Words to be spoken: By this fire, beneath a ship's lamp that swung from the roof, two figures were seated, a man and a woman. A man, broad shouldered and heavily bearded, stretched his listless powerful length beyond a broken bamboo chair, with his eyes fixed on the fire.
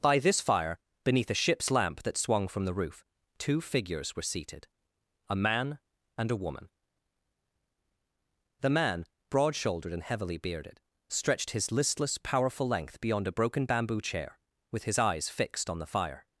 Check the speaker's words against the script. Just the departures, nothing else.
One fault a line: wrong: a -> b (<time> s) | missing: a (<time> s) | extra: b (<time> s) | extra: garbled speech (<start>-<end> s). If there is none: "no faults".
wrong: A -> The (8.6 s)